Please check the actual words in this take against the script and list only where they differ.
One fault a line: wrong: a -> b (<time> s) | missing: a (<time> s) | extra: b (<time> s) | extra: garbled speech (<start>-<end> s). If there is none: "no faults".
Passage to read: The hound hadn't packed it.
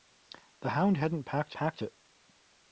extra: packed (1.5 s)